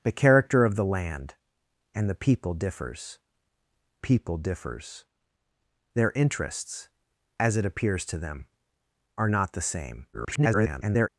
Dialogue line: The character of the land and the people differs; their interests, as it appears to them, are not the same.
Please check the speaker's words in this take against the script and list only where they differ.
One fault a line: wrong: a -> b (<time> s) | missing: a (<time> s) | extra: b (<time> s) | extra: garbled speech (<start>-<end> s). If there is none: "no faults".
extra: people differs (4.0 s)
extra: garbled speech (10.1-11.1 s)